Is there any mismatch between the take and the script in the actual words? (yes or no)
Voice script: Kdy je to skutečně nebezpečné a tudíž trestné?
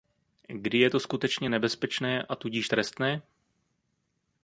no